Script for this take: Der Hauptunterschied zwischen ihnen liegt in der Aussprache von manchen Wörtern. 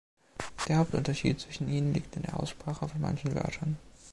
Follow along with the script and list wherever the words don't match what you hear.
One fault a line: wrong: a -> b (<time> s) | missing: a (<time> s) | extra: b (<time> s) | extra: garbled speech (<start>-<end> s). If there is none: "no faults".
no faults